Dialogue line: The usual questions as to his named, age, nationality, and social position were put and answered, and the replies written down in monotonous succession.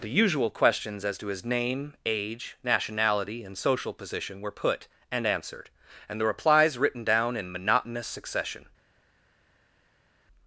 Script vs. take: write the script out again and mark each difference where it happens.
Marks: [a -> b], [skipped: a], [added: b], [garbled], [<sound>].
The usual questions as to his [named, -> name] age, nationality, and social position were put and answered, and the replies written down in monotonous succession.